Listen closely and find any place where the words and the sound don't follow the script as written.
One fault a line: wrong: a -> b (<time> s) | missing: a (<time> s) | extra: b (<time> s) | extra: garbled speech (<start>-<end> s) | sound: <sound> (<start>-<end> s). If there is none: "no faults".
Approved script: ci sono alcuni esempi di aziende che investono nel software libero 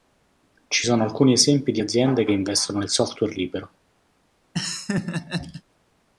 sound: laugh (4.5-5.6 s)